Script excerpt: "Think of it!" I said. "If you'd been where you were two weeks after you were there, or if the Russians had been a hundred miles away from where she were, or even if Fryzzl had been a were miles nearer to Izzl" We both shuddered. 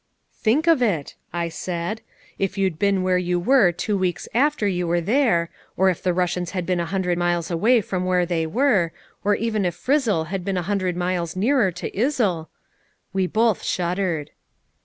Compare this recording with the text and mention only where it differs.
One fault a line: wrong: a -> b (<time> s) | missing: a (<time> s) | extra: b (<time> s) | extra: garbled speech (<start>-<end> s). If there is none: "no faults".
wrong: she -> they (8.2 s)
wrong: were -> hundred (10.6 s)